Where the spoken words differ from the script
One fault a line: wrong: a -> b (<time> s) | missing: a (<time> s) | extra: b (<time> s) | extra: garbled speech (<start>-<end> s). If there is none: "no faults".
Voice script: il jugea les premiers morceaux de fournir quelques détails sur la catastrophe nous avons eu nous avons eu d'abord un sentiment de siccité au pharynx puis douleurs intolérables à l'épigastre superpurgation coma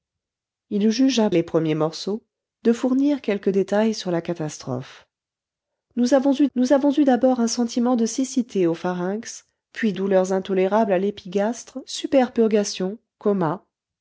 no faults